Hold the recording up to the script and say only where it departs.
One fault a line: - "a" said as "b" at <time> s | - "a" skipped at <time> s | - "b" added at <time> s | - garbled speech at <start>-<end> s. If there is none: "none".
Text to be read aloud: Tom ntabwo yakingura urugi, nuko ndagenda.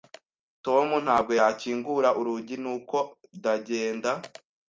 none